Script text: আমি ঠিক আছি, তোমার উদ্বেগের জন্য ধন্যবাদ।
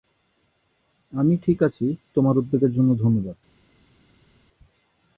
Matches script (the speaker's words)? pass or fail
pass